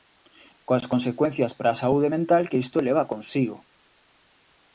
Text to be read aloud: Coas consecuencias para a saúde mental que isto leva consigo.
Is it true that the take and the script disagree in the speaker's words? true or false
false